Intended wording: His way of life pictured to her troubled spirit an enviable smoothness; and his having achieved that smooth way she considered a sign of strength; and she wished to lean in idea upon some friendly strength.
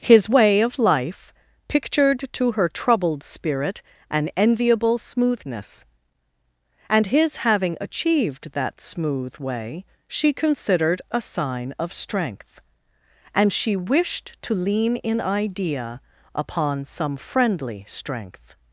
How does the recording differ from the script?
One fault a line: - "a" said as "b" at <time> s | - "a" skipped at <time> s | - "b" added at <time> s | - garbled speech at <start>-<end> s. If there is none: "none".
none